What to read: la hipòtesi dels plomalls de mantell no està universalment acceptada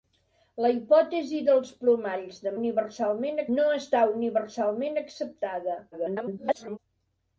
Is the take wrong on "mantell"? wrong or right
wrong